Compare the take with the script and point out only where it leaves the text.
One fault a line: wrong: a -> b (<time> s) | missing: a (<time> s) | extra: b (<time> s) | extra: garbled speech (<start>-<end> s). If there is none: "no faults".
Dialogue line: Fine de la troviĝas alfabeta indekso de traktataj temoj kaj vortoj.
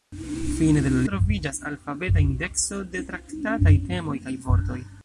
no faults